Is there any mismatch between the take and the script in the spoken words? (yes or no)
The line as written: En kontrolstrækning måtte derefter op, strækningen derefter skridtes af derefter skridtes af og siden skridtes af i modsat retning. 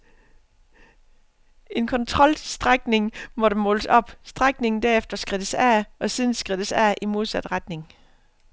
yes